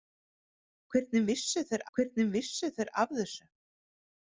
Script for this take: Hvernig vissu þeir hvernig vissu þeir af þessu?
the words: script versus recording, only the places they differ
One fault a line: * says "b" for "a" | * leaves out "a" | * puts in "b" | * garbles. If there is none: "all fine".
all fine